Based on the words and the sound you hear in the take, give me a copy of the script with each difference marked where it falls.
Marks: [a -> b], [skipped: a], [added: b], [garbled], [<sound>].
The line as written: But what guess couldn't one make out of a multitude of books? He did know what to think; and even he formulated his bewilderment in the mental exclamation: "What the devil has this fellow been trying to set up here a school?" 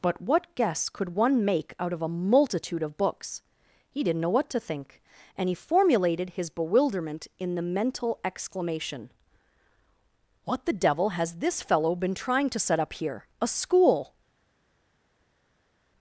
But what guess [couldn't -> could] one make out of a multitude of books? He [did -> didn't] know what to think; and [skipped: even] he formulated his bewilderment in the mental exclamation: "What the devil has this fellow been trying to set up here a school?"